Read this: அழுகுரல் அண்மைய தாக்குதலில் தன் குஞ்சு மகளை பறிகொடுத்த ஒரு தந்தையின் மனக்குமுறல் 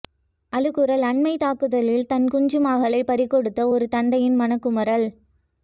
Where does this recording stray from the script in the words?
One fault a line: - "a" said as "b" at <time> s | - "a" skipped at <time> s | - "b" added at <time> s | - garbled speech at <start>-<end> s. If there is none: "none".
none